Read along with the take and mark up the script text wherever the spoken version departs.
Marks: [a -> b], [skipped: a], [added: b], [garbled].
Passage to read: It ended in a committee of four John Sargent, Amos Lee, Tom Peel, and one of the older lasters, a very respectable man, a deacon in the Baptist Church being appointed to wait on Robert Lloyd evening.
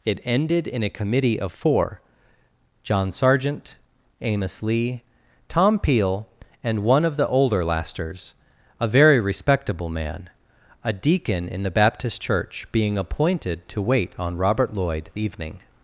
It ended in a committee of four John Sargent, Amos Lee, Tom Peel, and one of the older lasters, a very respectable man, a deacon in the Baptist Church being appointed to wait on Robert Lloyd evening.